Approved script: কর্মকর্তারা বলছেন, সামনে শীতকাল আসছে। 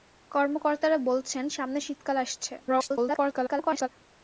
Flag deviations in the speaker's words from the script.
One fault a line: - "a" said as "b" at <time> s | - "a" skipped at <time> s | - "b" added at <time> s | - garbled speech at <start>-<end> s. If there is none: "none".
- garbled speech at 2.6-3.9 s